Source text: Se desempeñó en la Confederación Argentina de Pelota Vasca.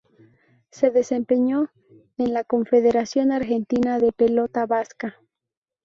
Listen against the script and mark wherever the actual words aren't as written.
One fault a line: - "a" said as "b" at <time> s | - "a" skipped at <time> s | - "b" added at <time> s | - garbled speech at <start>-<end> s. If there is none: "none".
none